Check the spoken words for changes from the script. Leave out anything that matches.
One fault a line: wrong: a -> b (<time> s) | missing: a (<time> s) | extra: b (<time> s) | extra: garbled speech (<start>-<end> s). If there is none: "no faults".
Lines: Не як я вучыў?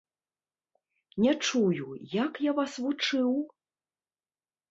extra: чую (1.5 s)
extra: вас (2.6 s)